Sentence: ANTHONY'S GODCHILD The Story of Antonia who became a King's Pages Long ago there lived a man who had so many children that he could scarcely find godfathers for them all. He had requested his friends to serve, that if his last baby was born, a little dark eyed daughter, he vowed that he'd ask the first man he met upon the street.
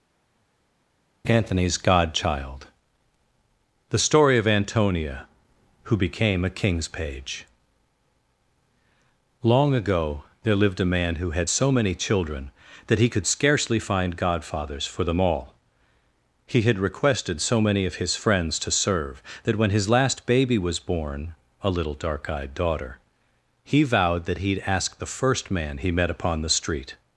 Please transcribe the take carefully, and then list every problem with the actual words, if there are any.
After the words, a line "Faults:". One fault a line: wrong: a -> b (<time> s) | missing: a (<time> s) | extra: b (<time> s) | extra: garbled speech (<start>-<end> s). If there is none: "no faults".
ANTHONY'S GODCHILD The Story of Antonia who became a King's Page Long ago there lived a man who had so many children that he could scarcely find godfathers for them all. He had requested so many of his friends to serve, that when his last baby was born, a little dark eyed daughter, he vowed that he'd ask the first man he met upon the street.
Faults:
wrong: Pages -> Page (6.9 s)
extra: so many of (17.4 s)
wrong: if -> when (19.5 s)